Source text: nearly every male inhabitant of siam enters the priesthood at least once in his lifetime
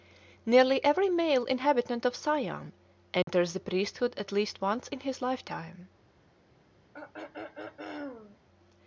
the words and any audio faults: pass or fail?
fail